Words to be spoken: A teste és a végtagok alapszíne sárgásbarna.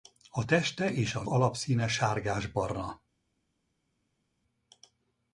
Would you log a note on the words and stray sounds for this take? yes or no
yes